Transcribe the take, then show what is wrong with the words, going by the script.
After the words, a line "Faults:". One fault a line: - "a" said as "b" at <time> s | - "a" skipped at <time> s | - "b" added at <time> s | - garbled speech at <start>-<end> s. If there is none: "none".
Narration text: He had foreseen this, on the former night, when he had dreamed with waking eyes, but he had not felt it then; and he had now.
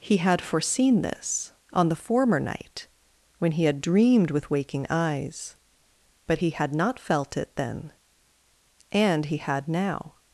He had foreseen this, on the former night, when he had dreamed with waking eyes, but he had not felt it then; and he had now.
Faults:
none